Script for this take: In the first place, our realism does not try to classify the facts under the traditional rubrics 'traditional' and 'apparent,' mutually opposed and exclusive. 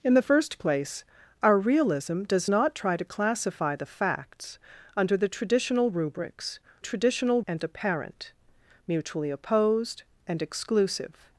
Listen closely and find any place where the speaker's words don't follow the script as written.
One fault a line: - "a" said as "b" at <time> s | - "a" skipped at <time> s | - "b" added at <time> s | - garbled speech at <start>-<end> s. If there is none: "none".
none